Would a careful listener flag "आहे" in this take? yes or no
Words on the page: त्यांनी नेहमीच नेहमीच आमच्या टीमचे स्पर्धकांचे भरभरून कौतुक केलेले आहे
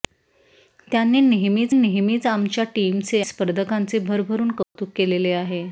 no